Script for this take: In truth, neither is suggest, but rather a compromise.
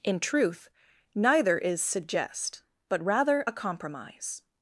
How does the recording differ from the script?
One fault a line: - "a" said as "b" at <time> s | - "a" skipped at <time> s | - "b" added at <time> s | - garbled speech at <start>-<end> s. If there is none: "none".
none